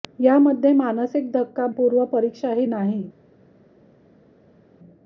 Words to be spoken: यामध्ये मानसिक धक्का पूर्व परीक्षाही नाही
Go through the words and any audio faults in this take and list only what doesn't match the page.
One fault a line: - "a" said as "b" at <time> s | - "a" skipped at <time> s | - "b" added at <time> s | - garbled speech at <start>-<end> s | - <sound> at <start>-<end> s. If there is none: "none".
none